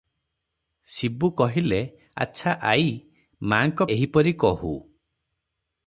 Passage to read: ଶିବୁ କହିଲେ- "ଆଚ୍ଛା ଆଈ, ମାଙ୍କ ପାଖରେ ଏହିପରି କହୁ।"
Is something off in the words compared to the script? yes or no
yes